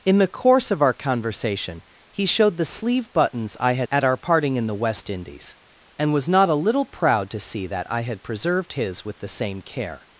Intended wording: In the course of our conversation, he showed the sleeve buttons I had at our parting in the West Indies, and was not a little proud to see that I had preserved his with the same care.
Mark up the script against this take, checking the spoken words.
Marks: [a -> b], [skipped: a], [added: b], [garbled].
In the course of our conversation, he showed the sleeve buttons I had at our parting in the West Indies, and was not a little proud to see that I had preserved his with the same care.